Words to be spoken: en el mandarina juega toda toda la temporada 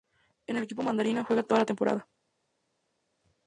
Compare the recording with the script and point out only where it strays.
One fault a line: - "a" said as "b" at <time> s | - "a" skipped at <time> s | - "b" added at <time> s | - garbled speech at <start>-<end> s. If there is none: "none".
- "equipo" added at 0.6 s
- "toda" skipped at 1.6 s